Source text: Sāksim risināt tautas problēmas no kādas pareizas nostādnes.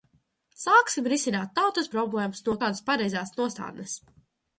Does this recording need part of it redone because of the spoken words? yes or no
no